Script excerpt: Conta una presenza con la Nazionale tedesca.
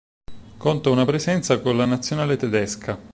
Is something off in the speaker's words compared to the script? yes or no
no